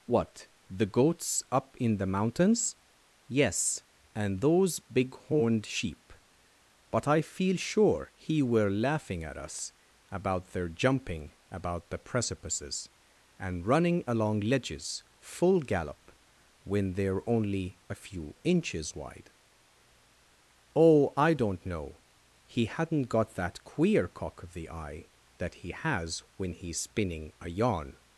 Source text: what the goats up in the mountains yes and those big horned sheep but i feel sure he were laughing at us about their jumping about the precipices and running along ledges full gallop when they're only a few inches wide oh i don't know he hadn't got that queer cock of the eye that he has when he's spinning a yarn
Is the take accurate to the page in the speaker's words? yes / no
yes